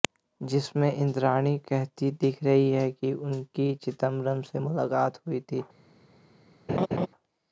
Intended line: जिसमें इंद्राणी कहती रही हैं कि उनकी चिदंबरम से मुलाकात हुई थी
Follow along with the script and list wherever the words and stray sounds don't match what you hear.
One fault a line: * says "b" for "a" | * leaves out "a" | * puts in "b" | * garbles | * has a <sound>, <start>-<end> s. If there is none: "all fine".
* puts in "दिख"
* has a laugh, 6.7-7.1 s